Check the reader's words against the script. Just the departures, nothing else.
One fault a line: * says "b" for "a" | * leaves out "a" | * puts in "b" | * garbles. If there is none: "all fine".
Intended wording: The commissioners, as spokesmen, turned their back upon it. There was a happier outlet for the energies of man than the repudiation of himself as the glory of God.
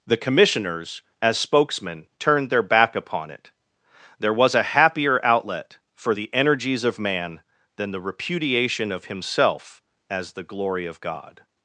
all fine